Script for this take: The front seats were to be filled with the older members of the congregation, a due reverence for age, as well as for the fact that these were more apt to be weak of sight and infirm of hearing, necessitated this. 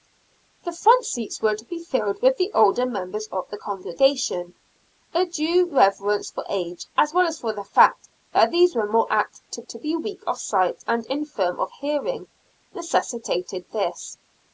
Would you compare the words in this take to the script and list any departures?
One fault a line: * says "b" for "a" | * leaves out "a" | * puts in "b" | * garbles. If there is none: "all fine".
* puts in "to"